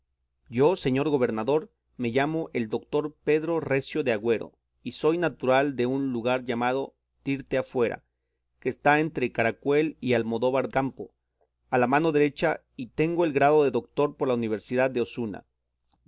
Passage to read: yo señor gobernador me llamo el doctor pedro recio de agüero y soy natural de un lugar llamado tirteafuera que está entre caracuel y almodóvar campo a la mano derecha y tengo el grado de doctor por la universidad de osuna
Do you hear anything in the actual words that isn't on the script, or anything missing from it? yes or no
no